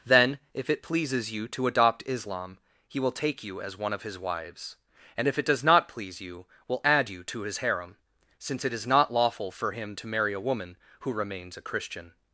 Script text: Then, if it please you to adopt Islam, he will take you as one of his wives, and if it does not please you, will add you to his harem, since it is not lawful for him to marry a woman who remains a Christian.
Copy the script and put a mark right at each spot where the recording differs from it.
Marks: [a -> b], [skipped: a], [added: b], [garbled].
Then, if it [please -> pleases] you to adopt Islam, he will take you as one of his wives, and if it does not please you, will add you to his harem, since it is not lawful for him to marry a woman who remains a Christian.